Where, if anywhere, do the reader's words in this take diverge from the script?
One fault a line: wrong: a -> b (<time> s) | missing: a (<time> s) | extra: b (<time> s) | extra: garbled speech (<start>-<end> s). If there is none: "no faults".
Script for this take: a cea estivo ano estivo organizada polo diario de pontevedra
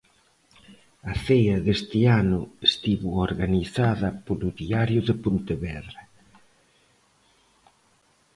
wrong: estivo -> deste (1.7 s)